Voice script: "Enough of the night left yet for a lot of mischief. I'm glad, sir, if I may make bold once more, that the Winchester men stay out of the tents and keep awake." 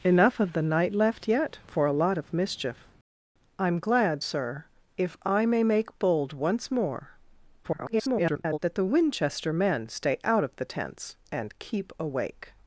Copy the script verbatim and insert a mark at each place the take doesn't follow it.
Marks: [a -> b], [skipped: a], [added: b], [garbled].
"Enough of the night left yet for a lot of mischief. I'm glad, sir, if I may make bold once more, [garbled] that the Winchester men stay out of the tents and keep awake."